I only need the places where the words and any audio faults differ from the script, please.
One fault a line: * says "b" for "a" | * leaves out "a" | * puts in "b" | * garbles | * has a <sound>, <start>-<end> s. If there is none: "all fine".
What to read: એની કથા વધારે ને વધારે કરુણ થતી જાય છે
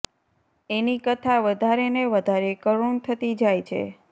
all fine